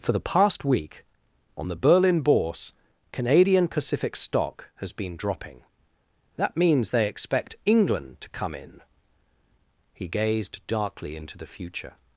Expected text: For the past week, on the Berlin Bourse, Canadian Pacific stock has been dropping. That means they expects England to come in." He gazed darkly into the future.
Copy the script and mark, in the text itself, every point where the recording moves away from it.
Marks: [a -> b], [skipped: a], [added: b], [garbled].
For the past week, on the Berlin Bourse, Canadian Pacific stock has been dropping. That means they [expects -> expect] England to come in." He gazed darkly into the future.